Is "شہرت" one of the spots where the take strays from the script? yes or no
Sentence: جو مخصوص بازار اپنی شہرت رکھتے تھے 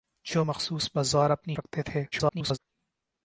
yes